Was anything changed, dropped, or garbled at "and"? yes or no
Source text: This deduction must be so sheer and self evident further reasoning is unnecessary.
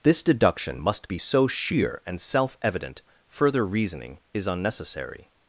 no